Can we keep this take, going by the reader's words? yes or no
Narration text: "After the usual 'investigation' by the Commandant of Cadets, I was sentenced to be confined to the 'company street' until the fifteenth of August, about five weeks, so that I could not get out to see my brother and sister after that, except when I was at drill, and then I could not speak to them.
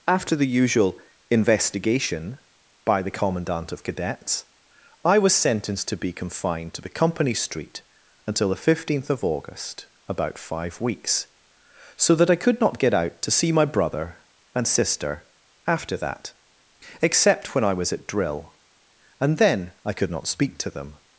yes